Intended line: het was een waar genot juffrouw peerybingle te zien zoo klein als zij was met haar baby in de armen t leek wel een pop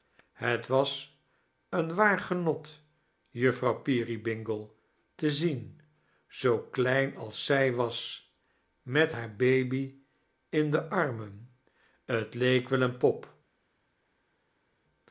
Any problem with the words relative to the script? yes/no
no